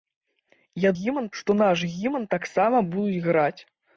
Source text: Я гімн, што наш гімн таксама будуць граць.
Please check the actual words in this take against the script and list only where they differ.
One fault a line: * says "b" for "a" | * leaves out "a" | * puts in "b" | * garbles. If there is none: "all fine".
all fine